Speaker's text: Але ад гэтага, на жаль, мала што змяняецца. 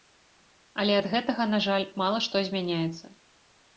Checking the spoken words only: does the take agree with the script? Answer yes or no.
yes